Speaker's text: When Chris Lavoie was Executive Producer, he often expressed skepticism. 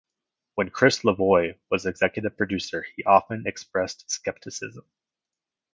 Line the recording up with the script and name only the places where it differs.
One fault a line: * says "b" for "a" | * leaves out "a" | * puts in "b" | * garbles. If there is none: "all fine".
all fine